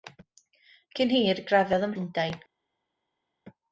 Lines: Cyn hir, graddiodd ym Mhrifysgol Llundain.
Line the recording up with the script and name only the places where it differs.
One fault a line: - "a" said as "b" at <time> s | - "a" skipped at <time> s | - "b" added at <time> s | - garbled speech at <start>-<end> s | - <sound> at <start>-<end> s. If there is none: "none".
- "Mhrifysgol" skipped at 1.9 s